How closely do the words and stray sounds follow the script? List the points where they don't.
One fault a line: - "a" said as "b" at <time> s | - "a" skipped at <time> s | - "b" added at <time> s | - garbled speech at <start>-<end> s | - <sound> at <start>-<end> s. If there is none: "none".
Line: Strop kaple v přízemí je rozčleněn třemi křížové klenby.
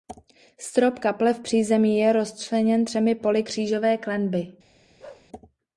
- "poli" added at 3.1 s
- bark at 5.0-5.3 s